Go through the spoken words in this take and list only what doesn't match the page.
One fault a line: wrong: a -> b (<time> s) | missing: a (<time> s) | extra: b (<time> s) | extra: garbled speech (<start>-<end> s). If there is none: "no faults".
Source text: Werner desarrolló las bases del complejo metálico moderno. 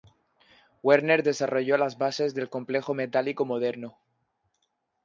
no faults